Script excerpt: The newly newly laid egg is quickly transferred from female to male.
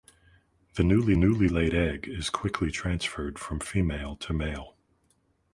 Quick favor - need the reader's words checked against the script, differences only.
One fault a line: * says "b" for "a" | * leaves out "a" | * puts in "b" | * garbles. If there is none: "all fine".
all fine